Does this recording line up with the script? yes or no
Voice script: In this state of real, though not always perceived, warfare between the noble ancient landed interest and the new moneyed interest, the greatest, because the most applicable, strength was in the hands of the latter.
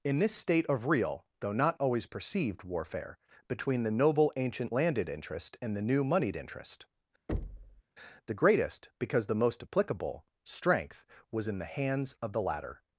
yes